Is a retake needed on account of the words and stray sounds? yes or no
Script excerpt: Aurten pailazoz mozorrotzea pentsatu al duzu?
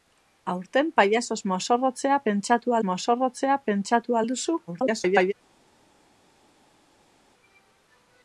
yes